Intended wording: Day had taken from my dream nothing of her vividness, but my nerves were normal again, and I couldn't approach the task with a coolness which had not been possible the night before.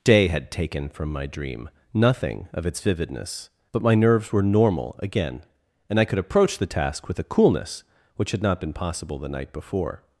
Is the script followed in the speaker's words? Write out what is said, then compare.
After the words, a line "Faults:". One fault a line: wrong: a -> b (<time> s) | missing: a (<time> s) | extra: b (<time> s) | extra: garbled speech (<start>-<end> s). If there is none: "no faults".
Day had taken from my dream nothing of its vividness, but my nerves were normal again, and I could approach the task with a coolness which had not been possible the night before.
Faults:
wrong: her -> its (2.6 s)
wrong: couldn't -> could (6.0 s)